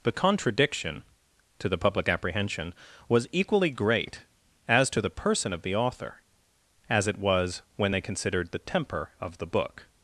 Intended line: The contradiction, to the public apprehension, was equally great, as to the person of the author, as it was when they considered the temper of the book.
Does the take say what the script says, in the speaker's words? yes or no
yes